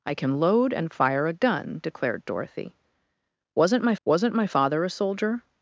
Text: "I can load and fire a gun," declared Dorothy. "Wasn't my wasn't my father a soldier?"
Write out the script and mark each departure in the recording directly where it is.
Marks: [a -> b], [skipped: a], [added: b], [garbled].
"I can load and fire a gun," declared Dorothy. "Wasn't my wasn't my father a soldier?"